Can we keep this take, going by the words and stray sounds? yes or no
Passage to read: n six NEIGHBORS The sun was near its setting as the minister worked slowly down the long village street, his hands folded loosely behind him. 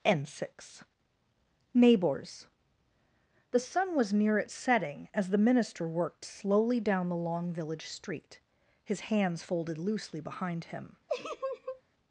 no